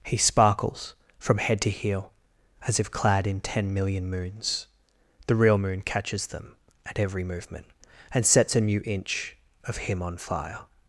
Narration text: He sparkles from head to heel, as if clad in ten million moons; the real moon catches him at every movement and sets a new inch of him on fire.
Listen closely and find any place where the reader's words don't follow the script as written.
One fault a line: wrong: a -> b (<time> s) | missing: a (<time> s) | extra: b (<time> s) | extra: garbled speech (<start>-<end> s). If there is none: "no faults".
wrong: him -> them (6.3 s)